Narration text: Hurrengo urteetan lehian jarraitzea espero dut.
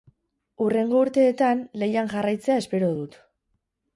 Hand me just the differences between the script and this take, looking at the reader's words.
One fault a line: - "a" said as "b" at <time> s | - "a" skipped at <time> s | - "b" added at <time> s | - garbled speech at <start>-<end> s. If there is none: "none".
none